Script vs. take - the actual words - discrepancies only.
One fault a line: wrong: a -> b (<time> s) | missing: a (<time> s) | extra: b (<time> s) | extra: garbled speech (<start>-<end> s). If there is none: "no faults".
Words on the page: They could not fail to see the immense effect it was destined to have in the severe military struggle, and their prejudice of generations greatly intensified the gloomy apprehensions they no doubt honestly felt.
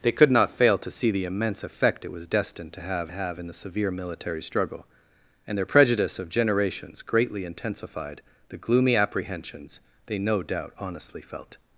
extra: have (3.1 s)